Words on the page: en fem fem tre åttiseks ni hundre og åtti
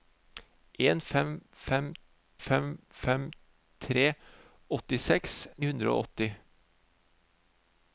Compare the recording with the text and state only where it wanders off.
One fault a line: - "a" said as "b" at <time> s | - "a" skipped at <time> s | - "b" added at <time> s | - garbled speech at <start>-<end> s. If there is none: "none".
- "fem fem" added at 2.4 s
- "ni" skipped at 5.4 s